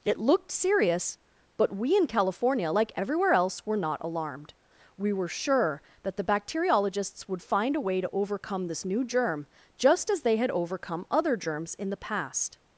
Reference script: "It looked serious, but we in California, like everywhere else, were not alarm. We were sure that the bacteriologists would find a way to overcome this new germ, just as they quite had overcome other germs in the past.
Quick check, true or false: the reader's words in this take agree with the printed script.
false